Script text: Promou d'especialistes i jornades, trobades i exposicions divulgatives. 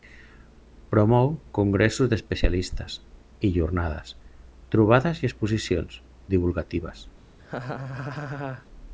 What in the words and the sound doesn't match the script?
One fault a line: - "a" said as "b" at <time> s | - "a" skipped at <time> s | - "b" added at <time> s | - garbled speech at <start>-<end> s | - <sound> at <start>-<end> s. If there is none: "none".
- "congressos" added at 1.6 s
- laugh at 7.4-8.7 s